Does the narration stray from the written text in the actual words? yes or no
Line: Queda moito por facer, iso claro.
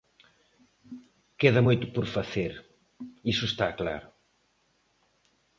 yes